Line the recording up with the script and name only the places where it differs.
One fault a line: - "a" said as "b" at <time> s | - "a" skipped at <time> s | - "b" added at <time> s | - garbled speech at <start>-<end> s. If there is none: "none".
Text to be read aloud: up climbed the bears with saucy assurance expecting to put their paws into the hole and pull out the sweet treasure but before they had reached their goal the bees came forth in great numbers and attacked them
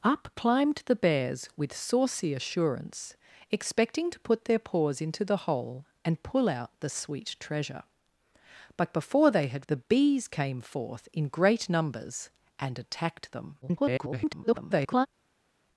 - "reached their goal" skipped at 9.7 s
- garbled speech at 13.6-15.1 s